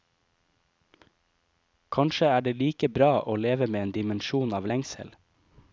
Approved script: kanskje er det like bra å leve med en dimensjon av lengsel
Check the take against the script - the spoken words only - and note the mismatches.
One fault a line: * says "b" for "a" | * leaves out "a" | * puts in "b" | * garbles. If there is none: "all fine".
all fine